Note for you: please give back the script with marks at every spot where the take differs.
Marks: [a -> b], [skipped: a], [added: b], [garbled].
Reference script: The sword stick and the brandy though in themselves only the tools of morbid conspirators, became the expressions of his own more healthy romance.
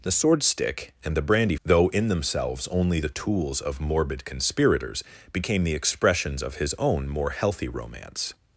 The sword stick and the brandy though in themselves only the tools of morbid conspirators, became the expressions of his own more healthy romance.